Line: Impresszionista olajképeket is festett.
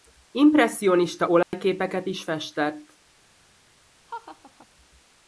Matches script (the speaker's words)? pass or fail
pass